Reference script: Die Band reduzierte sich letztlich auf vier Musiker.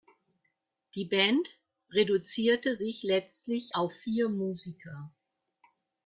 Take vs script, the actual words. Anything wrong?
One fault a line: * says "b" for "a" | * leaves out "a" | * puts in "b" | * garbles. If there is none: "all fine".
all fine